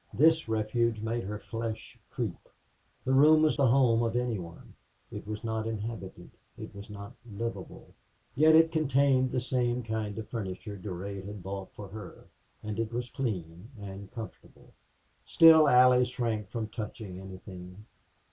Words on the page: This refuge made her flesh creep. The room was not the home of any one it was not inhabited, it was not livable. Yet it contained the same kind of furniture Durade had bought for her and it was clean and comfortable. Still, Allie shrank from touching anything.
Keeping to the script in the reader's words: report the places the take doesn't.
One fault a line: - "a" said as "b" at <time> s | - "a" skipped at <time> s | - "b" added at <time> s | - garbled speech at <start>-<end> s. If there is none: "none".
- "not" skipped at 3.6 s